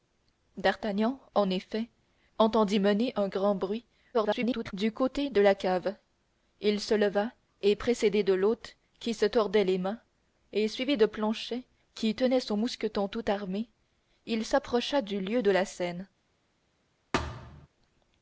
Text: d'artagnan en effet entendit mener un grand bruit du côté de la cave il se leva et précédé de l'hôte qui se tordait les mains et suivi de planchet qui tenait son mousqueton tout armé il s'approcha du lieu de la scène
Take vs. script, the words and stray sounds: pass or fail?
fail